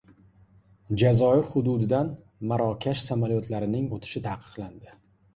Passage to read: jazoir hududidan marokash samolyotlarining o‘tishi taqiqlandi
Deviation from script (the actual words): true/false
false